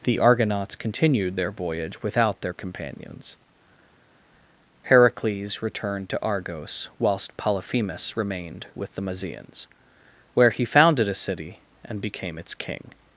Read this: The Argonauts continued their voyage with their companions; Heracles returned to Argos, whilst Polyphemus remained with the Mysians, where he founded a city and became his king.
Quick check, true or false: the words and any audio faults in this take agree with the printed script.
false